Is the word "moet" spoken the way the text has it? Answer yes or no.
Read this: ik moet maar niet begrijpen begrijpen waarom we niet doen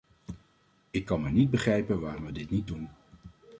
no